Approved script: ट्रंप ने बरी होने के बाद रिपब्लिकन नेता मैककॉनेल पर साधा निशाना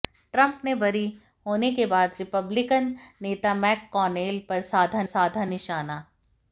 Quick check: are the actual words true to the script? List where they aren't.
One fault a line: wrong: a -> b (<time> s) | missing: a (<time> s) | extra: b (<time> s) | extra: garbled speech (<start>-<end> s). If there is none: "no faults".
extra: साधा (5.0 s)